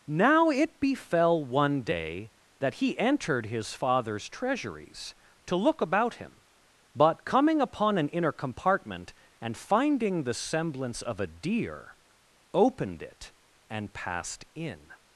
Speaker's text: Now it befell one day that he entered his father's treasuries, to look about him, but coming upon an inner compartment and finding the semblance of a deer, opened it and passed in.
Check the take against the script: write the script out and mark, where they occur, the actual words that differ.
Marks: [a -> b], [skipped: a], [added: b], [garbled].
Now it befell one day that he entered his father's treasuries, to look about him, but coming upon an inner compartment and finding the semblance of a deer, opened it and passed in.